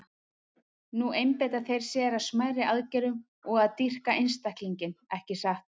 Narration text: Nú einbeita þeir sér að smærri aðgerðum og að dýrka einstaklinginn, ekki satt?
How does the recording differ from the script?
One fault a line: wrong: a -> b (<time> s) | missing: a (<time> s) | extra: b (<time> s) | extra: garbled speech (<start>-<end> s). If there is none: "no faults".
no faults